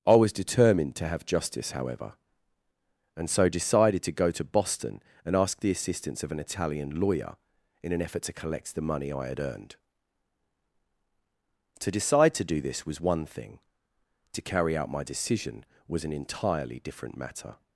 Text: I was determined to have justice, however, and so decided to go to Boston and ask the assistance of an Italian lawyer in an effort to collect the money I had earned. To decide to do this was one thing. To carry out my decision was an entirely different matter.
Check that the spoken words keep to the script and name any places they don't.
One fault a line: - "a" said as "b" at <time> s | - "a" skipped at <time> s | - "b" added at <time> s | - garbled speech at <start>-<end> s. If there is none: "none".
none